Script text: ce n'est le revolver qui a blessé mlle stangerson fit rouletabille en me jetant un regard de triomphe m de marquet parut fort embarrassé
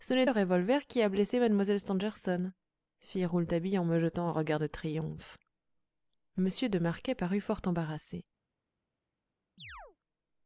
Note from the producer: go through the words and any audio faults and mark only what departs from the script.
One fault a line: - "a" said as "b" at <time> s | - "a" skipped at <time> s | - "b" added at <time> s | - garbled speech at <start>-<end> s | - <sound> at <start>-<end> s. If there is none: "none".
- chirp at 9.6-10.0 s